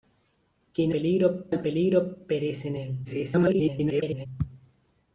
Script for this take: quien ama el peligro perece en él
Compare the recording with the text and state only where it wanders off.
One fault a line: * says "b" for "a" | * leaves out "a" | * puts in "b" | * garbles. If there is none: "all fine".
* says "peligro" for "ama"
* garbles